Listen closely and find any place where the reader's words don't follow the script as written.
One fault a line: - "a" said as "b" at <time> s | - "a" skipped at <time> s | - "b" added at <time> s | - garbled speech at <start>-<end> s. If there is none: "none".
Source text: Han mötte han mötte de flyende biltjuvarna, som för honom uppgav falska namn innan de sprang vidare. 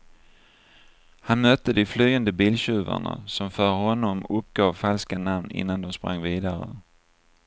- "han mötte" skipped at 1.7 s